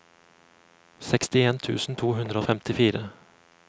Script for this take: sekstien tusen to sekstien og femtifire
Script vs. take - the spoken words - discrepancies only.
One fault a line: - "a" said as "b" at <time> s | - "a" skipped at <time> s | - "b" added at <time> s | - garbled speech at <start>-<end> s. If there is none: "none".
- "sekstien" said as "hundre" at 2.2 s